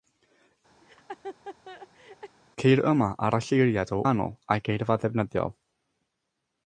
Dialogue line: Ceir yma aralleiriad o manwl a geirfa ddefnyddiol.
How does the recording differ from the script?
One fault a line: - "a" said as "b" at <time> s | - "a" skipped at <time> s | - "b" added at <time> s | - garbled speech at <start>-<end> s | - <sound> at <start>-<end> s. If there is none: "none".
- laugh at 0.8-2.4 s